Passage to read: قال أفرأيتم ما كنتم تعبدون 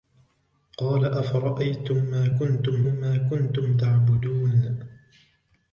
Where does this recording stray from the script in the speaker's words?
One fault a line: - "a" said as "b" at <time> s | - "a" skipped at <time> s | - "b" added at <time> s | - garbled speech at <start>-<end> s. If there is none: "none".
- "ما كنتم" added at 2.9 s